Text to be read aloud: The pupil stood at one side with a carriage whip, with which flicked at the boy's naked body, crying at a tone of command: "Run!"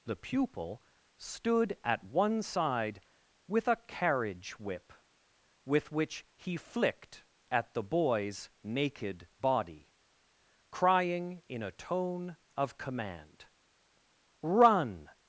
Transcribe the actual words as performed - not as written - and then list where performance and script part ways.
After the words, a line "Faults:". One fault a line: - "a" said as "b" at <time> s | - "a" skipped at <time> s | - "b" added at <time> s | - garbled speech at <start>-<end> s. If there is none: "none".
The pupil stood at one side with a carriage whip, with which he flicked at the boy's naked body, crying in a tone of command: "Run!"
Faults:
- "he" added at 6.3 s
- "at" said as "in" at 11.5 s